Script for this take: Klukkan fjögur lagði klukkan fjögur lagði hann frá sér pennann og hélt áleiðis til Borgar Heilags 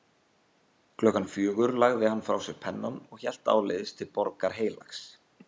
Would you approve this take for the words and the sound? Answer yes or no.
no